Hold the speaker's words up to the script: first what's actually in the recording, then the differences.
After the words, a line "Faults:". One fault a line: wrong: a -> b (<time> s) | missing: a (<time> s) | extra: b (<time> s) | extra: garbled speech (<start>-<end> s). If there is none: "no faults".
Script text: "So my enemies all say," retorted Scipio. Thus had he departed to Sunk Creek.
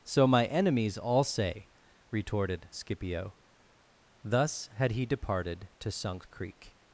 "So my enemies all say," retorted Scipio. Thus had he departed to Sunk Creek.
Faults:
no faults